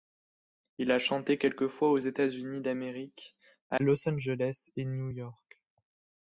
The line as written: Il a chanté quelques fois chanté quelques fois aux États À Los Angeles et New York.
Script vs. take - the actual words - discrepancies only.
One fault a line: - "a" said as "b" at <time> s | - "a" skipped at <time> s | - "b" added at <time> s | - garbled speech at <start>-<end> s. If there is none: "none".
- "chanté quelques fois aux États" said as "aux États Unis d'Amérique" at 1.9 s